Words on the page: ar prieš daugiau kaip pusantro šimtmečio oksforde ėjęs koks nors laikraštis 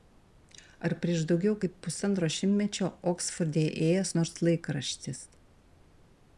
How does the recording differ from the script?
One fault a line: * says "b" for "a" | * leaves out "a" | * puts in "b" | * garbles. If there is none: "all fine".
* leaves out "koks"